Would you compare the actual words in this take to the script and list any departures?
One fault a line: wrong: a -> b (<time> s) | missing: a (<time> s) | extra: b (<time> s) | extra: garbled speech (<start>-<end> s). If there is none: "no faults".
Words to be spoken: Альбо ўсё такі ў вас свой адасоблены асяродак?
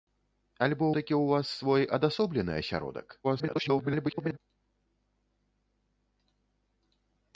missing: ўсё (0.8 s)
extra: garbled speech (3.2-4.4 s)